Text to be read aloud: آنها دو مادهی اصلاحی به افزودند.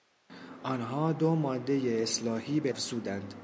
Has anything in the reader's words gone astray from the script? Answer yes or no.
no